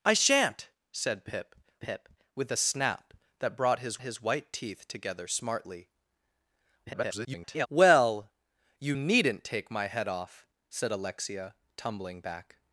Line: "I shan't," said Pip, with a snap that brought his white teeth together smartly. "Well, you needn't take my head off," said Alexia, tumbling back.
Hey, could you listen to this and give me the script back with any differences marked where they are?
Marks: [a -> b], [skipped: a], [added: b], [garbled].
"I shan't," said Pip, [added: Pip] with a snap that brought his [added: his] white teeth together smartly. [garbled] "Well, you needn't take my head off," said Alexia, tumbling back.